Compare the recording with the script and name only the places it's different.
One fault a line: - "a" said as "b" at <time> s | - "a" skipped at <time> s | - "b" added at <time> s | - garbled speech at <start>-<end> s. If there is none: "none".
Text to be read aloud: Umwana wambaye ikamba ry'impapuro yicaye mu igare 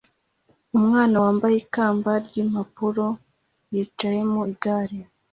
none